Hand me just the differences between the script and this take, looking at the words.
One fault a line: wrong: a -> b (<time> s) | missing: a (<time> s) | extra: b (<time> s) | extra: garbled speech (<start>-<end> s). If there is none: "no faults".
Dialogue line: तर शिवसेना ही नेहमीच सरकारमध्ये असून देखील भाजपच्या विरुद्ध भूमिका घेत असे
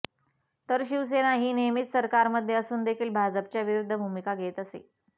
no faults